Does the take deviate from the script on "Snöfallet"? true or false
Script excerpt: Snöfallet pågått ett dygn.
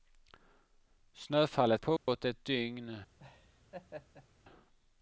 false